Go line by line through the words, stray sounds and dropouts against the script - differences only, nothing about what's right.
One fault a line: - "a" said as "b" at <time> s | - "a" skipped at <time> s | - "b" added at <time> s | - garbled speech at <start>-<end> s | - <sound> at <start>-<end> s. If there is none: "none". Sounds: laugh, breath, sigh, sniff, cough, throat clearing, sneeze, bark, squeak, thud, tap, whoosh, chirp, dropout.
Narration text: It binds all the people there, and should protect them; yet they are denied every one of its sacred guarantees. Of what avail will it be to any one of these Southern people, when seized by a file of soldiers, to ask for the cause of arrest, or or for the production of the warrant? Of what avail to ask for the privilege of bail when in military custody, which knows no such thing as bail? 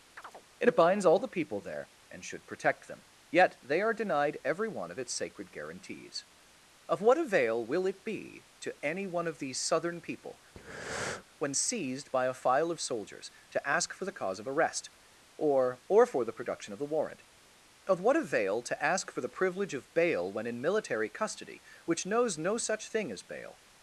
- chirp at 0.2-0.4 s
- breath at 10.5-11.2 s